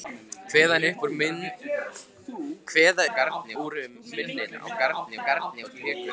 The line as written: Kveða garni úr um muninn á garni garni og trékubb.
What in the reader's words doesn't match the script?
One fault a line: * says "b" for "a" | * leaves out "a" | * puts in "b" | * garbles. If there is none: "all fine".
all fine